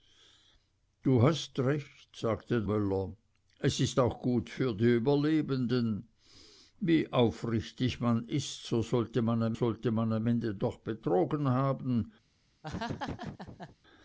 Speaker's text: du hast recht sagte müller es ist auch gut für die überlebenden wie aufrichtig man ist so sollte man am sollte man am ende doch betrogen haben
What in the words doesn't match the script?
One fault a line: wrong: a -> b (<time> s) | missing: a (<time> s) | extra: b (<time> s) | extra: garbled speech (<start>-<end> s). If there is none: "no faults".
no faults